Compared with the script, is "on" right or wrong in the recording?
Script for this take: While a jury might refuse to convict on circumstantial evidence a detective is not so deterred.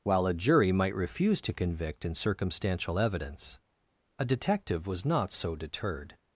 wrong